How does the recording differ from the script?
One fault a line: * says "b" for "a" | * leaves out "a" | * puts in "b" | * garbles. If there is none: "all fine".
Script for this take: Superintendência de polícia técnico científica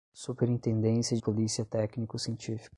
* leaves out "de"